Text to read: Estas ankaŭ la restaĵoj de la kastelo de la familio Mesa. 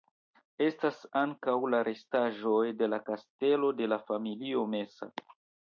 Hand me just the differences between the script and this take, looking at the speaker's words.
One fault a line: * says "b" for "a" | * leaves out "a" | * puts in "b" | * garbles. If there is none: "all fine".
all fine